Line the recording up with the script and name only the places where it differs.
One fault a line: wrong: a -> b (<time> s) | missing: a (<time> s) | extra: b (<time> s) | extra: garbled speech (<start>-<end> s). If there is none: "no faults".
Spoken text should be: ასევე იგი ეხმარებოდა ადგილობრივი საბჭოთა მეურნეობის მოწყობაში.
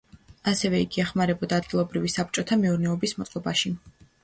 no faults